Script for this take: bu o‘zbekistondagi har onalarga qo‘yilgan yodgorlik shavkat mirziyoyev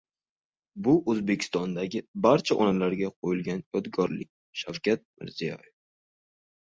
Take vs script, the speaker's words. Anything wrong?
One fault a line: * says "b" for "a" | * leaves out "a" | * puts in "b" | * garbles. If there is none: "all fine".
* says "barcha" for "har"